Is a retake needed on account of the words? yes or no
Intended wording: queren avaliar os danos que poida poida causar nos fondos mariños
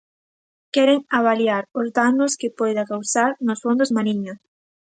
yes